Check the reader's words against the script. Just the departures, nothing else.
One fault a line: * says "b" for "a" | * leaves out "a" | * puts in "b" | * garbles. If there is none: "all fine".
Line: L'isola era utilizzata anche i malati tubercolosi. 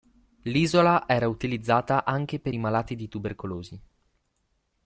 * puts in "per"
* puts in "di"